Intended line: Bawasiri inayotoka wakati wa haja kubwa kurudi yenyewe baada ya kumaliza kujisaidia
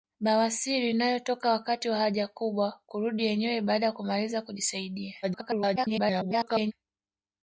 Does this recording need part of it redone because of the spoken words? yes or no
yes